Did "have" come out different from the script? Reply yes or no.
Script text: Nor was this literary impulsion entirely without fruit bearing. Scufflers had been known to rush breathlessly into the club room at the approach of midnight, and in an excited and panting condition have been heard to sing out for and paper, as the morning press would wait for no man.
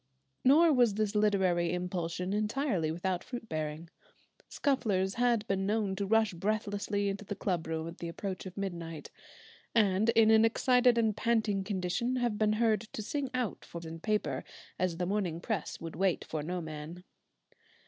no